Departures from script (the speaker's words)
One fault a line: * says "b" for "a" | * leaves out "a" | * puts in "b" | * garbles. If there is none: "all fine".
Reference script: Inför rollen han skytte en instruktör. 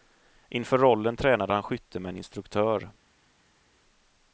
* puts in "tränade"
* puts in "med"